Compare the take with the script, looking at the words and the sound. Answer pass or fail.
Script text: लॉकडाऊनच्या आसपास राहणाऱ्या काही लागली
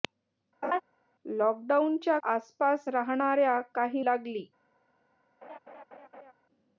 fail